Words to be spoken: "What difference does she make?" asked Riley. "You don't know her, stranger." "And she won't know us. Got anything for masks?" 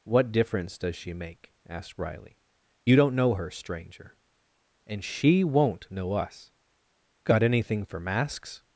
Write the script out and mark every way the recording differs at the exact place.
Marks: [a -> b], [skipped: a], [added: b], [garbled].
"What difference does she make?" asked Riley. "You don't know her, stranger." "And she won't know us. Got anything for masks?"